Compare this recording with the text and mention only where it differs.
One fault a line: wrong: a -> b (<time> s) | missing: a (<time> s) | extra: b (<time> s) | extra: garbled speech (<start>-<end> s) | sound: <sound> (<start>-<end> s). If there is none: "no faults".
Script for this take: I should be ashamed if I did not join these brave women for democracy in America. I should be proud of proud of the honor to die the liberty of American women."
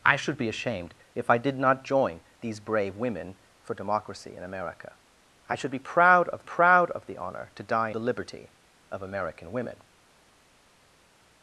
no faults